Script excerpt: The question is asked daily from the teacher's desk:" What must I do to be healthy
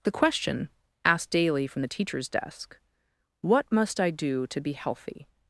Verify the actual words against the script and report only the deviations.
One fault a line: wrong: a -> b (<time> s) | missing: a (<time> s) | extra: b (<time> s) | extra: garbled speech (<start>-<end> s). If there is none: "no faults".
missing: is (0.7 s)